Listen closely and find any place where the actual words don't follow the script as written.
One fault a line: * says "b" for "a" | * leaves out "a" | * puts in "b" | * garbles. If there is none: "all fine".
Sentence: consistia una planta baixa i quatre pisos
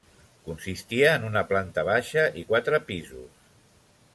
* puts in "en"